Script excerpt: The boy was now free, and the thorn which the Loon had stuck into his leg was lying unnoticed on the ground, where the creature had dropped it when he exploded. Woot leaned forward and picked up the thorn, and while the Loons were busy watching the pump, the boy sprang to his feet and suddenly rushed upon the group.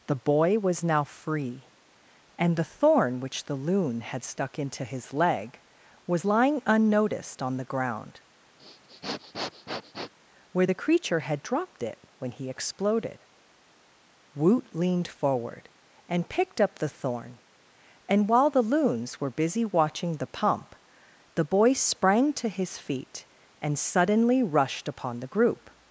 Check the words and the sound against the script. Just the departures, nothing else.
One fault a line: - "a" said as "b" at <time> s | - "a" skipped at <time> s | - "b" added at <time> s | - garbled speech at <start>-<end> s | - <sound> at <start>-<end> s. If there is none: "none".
- sniff at 8.6-10.1 s